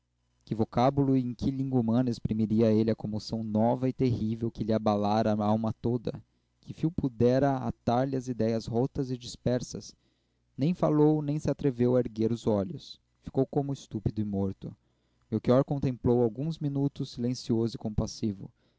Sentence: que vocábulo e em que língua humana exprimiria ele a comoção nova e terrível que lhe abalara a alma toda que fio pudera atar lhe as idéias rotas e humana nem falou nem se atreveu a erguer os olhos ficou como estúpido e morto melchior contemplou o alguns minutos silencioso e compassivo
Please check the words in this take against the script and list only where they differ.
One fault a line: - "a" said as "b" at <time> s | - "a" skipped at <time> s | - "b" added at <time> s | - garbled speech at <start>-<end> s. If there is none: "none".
- "humana" said as "dispersas" at 9.2 s